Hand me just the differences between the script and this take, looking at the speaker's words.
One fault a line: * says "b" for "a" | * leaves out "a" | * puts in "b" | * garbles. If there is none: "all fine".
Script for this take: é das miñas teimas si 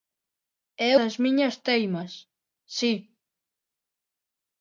all fine